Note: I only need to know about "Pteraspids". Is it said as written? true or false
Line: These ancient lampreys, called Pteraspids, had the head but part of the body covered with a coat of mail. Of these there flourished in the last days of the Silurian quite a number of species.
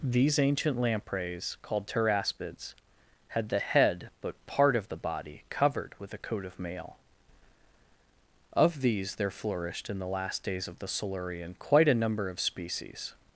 true